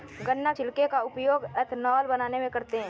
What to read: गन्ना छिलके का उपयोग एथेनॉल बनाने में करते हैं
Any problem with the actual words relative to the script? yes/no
no